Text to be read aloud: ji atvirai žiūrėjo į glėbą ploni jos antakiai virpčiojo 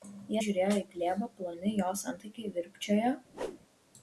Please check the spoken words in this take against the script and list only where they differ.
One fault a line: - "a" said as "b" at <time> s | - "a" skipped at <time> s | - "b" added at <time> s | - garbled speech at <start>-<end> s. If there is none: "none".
- "atvirai" skipped at 0.4 s